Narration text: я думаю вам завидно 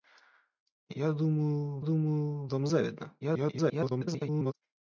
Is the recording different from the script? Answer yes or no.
yes